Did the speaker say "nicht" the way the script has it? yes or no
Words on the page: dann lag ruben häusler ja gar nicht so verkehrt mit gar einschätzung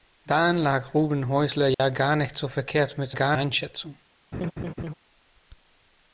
yes